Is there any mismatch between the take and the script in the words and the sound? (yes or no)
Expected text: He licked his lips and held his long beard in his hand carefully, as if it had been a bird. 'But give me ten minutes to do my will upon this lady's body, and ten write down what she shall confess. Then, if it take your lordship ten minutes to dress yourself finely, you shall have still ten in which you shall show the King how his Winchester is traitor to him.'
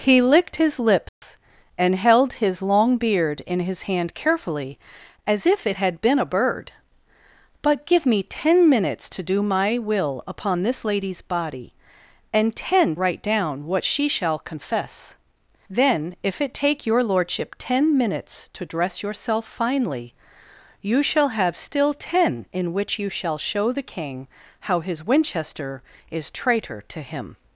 yes